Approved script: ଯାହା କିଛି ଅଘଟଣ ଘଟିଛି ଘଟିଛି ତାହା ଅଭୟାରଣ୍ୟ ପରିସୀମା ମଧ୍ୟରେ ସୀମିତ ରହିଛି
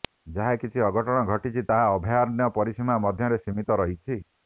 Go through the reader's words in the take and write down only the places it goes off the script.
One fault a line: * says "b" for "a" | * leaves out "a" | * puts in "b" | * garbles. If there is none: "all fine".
* leaves out "ଘଟିଛି"